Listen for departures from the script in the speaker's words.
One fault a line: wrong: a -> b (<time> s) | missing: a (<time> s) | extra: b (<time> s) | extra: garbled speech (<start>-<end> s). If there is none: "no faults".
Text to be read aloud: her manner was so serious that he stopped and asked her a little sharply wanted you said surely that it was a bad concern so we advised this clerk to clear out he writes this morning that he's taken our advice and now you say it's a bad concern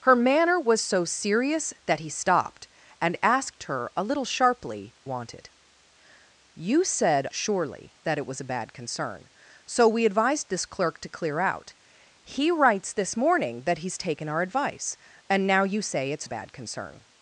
no faults